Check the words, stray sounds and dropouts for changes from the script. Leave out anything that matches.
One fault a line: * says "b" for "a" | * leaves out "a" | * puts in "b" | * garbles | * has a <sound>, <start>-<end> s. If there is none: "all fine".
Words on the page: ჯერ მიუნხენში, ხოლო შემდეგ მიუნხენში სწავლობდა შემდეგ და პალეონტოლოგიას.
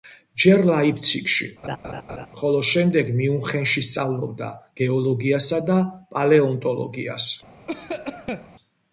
* says "ლაიფციგში" for "მიუნხენში"
* has a laugh, 1.6-2.3 s
* says "გეოლოგიასა" for "შემდეგ"
* has a cough, 7.7-8.5 s